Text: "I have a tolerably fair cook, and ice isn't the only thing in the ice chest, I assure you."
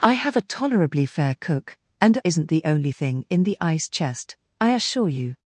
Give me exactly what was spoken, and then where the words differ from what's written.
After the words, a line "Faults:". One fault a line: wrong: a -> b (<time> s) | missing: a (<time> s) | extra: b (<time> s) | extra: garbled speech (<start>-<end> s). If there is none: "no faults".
"I have a tolerably fair cook, and isn't the only thing in the ice chest, I assure you."
Faults:
missing: ice (2.2 s)